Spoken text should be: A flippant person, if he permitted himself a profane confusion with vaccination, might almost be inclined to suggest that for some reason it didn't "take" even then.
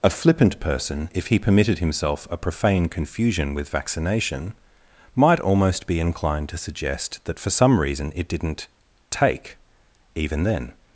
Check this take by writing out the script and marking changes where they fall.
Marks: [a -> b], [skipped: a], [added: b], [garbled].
A flippant person, if he permitted himself a profane confusion with vaccination, might almost be inclined to suggest that for some reason it didn't "take" even then.